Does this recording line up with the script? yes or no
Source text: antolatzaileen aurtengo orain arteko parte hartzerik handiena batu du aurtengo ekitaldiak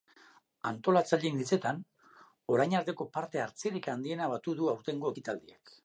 no